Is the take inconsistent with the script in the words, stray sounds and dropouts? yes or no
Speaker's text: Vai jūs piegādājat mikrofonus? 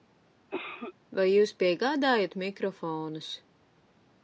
yes